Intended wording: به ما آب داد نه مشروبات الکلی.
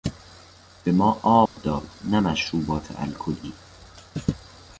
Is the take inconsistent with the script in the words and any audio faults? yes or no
yes